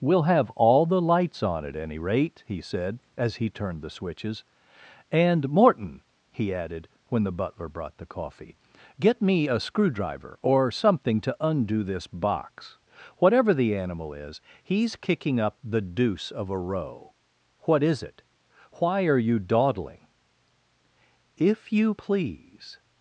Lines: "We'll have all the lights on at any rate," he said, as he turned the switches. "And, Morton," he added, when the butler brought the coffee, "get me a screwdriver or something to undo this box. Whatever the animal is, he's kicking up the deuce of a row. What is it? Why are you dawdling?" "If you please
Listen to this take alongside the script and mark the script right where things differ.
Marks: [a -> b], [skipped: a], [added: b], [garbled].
"We'll have all the lights on at any rate," he said, as he turned the switches. "And, Morton," he added, when the butler brought the coffee, "get me a screwdriver or something to undo this box. Whatever the animal is, he's kicking up the deuce of a row. What is it? Why are you dawdling?" "If you please